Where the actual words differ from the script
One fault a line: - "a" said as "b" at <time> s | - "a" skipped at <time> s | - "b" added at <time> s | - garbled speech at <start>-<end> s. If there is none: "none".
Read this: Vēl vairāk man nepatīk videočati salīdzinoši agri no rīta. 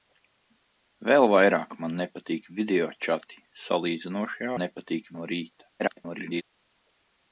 - "agri" said as "nepatīk" at 4.6 s
- garbled speech at 5.8-6.4 s